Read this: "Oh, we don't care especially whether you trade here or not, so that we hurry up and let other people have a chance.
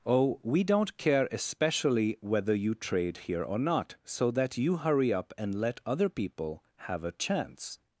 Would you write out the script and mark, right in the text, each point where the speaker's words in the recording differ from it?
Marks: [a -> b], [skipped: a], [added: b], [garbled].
"Oh, we don't care especially whether you trade here or not, so that [we -> you] hurry up and let other people have a chance.